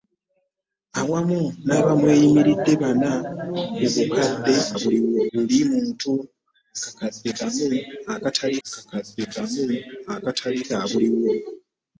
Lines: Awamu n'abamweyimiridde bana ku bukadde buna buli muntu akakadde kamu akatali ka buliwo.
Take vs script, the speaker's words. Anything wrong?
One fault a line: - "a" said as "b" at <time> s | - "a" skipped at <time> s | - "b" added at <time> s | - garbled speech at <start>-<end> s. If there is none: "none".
- "buna" said as "buliwo" at 4.8 s
- "akakadde kamu akatali" added at 8.7 s